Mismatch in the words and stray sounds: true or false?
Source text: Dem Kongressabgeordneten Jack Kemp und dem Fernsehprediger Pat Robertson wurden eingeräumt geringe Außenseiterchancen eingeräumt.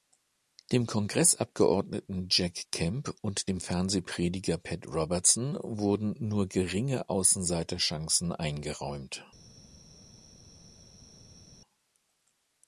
true